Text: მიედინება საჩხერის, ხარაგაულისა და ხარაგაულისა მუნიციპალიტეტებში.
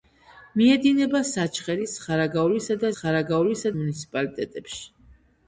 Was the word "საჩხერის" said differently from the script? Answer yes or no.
no